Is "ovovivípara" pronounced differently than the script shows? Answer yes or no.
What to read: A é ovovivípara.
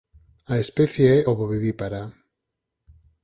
no